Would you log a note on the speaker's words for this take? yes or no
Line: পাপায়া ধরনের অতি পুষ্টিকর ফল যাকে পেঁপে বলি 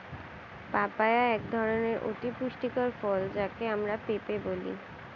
yes